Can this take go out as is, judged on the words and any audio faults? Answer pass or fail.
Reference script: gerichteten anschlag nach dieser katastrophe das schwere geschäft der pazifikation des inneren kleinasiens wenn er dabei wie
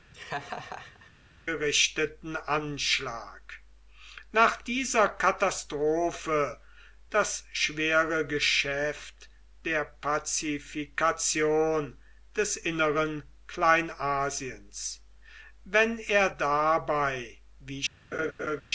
fail